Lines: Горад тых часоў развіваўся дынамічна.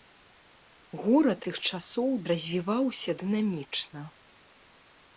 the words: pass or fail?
pass